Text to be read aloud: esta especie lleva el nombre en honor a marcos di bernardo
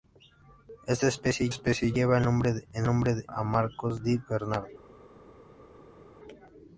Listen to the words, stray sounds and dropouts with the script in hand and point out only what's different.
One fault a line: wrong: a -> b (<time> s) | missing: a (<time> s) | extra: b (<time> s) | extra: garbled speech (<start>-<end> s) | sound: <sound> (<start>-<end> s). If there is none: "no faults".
extra: especie (1.5 s)
wrong: honor -> nombre (2.9 s)